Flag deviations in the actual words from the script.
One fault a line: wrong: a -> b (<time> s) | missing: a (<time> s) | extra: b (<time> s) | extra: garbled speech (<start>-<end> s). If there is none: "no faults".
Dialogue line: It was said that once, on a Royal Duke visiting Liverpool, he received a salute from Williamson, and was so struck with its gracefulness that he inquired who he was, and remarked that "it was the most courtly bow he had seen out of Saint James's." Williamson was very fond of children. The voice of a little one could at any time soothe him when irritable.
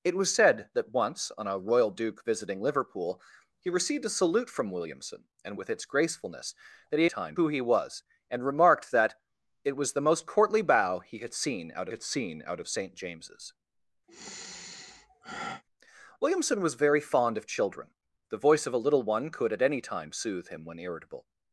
missing: was so struck (5.6 s)
wrong: inquired -> time (7.1 s)
extra: had seen out (11.9 s)